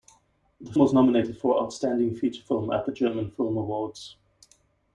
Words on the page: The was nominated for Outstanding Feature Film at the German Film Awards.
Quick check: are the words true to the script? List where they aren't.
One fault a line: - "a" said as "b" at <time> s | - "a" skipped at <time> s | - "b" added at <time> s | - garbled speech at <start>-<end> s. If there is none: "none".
none